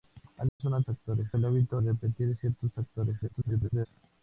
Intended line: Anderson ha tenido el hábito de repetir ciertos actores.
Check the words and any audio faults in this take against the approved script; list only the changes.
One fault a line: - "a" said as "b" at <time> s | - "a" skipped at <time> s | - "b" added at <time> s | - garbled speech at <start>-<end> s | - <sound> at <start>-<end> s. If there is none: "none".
- dropout at 0.5-0.6 s
- "tenido" said as "actores" at 0.9 s
- "de" skipped at 1.8 s
- garbled speech at 3.2-3.9 s